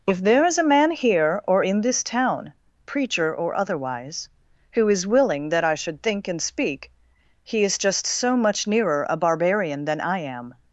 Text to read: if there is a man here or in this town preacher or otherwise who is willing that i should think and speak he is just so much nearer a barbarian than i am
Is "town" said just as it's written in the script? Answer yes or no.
yes